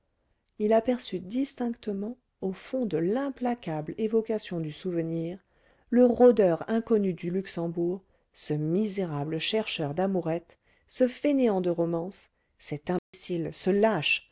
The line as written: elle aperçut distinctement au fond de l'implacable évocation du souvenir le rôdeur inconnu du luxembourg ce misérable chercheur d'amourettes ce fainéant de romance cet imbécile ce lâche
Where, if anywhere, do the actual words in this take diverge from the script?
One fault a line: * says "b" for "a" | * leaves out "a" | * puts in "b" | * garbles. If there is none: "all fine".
* says "il" for "elle"